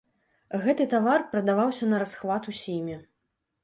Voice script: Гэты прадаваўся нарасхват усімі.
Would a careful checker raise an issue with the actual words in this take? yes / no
yes